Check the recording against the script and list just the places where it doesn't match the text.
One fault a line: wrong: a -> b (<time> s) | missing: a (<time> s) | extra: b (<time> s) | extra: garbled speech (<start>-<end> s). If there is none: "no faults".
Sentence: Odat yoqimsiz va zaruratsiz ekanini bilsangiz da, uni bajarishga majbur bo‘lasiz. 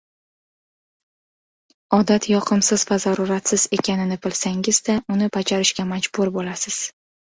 no faults